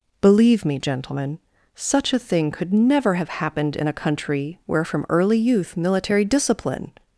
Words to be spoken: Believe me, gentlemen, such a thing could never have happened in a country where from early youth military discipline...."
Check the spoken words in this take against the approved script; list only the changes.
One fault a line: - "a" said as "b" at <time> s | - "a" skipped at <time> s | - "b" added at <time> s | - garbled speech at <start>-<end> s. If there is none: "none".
none